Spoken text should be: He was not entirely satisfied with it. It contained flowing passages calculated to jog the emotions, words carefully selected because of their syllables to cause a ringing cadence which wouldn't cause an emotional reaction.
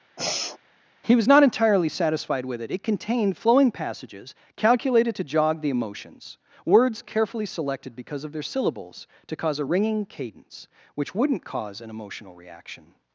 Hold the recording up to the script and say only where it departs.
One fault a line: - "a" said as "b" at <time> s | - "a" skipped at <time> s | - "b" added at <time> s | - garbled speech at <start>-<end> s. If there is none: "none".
none